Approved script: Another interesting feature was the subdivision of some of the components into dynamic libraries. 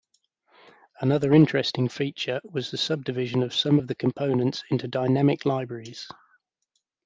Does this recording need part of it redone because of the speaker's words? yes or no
no